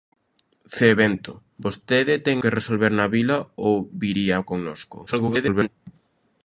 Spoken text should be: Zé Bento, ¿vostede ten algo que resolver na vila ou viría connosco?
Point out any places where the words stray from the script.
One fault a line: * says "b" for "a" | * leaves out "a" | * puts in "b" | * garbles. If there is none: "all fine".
* leaves out "algo"
* garbles